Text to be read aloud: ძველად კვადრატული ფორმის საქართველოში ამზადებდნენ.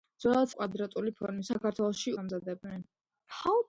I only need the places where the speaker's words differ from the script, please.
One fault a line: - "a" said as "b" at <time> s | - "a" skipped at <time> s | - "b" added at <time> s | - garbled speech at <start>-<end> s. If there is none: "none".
none